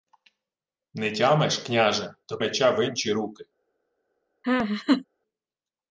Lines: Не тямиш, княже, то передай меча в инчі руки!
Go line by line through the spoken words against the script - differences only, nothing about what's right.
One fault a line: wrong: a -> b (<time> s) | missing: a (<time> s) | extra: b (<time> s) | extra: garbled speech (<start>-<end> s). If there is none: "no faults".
missing: передай (2.4 s)